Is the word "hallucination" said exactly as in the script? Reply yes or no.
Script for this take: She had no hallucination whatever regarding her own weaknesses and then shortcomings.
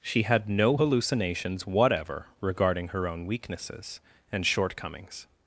no